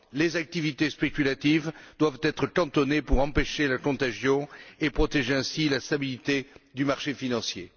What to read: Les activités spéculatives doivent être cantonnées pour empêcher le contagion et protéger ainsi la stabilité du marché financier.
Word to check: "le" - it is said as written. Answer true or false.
false